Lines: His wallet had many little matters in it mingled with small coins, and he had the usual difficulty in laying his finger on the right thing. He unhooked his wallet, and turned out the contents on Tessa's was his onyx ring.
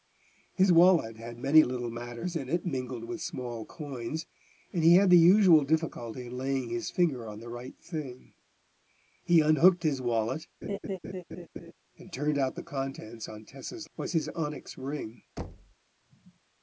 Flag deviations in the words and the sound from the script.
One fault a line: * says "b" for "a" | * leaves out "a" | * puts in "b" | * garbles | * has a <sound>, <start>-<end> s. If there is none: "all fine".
* has a laugh, 10.6-11.7 s
* has a thud, 15.4-15.7 s